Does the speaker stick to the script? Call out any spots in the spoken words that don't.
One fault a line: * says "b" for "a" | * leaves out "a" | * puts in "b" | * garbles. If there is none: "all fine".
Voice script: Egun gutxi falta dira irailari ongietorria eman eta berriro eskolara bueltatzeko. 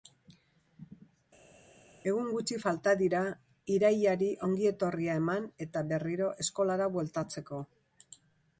all fine